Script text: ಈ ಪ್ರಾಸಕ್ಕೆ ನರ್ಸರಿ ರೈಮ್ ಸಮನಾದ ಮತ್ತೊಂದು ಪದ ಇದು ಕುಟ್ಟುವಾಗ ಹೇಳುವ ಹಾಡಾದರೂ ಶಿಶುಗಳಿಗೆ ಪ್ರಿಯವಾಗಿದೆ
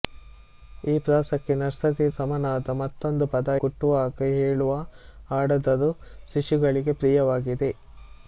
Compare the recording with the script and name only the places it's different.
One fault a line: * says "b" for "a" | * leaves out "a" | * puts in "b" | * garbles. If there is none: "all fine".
* leaves out "ರೈಮ್"
* leaves out "ಇದು"